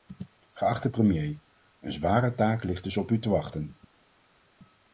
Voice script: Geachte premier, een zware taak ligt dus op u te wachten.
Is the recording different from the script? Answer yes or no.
no